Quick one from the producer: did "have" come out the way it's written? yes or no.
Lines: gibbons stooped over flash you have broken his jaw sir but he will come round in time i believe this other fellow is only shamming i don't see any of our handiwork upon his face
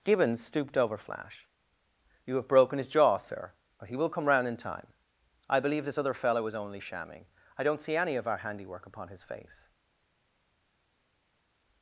yes